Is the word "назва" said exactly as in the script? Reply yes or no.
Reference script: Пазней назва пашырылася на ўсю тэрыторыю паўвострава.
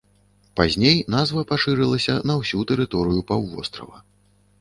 yes